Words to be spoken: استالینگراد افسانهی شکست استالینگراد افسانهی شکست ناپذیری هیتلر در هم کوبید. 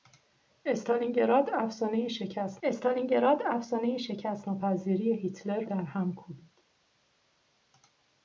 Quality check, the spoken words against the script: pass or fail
pass